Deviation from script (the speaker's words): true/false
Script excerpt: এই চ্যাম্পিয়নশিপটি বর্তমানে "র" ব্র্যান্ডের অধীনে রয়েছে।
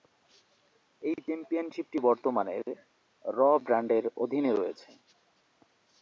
false